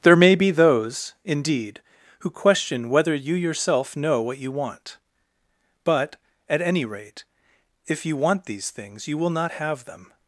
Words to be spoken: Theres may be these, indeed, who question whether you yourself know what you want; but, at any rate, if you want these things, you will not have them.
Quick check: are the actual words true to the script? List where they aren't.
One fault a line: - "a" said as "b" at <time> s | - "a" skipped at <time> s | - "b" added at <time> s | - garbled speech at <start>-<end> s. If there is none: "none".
- "Theres" said as "There" at 0.0 s
- "these" said as "those" at 0.5 s